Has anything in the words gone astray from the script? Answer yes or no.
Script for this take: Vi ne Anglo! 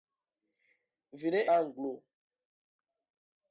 no